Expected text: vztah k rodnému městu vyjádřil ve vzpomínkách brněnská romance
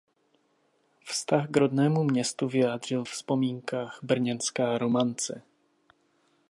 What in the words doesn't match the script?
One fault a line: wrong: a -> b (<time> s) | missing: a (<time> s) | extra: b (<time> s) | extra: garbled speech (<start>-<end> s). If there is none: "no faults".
missing: ve (3.0 s)